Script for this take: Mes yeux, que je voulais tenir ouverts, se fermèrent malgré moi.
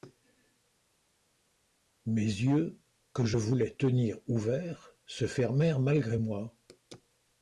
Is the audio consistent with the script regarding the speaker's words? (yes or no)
yes